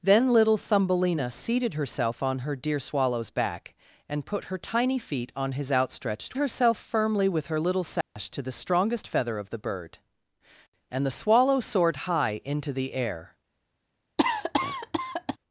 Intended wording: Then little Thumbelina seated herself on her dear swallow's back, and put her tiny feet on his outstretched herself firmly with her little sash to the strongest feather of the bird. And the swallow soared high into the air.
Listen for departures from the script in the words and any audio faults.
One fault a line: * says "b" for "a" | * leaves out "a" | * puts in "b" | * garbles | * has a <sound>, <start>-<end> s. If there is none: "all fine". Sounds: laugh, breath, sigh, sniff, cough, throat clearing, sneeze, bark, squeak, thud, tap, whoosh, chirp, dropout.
* has a dropout, 8.0-8.2 s
* has a cough, 14.2-15.4 s